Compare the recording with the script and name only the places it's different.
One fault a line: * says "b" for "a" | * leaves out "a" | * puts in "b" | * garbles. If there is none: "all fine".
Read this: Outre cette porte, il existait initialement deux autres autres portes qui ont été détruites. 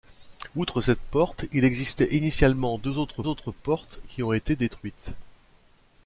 all fine